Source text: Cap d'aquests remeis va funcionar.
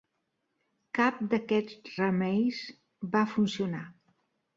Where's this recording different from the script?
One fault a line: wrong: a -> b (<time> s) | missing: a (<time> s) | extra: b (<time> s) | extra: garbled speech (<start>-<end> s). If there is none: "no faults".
no faults